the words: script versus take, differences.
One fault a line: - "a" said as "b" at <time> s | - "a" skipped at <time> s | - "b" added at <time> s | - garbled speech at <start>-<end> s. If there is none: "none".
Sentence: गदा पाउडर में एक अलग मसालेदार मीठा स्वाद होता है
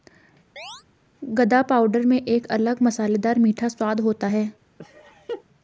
none